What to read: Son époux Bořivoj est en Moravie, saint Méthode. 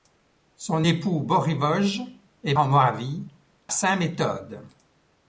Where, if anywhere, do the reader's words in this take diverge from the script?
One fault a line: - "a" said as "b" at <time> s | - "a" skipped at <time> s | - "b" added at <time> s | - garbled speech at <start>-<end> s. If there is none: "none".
none